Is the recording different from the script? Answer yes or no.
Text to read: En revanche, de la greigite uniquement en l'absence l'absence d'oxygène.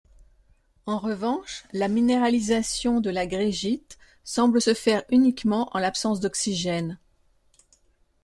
yes